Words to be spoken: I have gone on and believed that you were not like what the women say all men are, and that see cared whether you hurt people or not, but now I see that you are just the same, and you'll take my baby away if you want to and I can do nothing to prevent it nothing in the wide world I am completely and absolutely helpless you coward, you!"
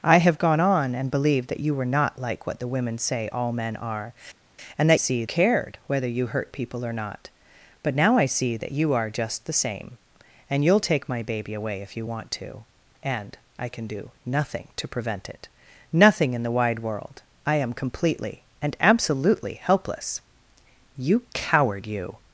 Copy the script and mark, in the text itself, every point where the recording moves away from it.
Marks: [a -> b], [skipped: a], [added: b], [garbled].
I have gone on and believed that you were not like what the women say all men are, and that see cared whether you hurt people or not, but now I see that you are just the same, and you'll take my baby away if you want to and I can do nothing to prevent it nothing in the wide world I am completely and absolutely helpless you coward, you!"